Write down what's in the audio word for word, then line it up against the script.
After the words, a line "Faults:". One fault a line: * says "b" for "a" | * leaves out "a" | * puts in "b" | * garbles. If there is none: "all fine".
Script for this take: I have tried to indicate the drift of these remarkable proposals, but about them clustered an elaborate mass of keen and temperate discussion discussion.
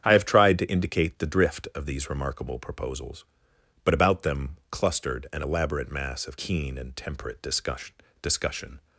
I have tried to indicate the drift of these remarkable proposals, but about them clustered an elaborate mass of keen and temperate discussion discussion.
Faults:
all fine